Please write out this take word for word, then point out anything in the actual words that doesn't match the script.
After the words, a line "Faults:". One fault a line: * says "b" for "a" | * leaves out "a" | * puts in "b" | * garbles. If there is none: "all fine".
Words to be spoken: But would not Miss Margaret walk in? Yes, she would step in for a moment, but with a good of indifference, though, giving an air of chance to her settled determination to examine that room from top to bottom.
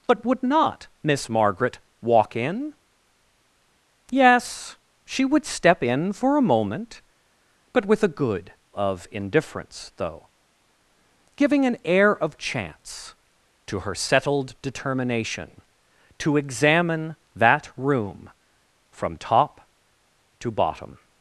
But would not Miss Margaret walk in? Yes, she would step in for a moment, but with a good of indifference, though, giving an air of chance to her settled determination to examine that room from top to bottom.
Faults:
all fine